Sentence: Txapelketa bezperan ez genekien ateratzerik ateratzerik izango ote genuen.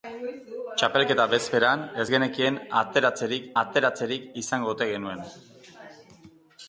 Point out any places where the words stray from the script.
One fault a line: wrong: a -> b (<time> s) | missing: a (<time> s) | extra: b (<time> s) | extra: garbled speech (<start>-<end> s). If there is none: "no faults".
no faults